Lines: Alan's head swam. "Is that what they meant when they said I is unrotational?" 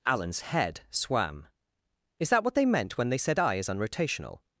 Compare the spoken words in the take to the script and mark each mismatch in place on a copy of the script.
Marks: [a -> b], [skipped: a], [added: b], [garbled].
Alan's head swam. "Is that what they meant when they said I is unrotational?"